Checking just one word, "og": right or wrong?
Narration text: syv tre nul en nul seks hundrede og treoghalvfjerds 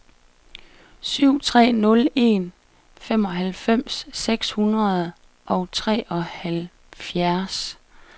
right